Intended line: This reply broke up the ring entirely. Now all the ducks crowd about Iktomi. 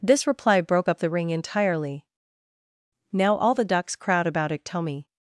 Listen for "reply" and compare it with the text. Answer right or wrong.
right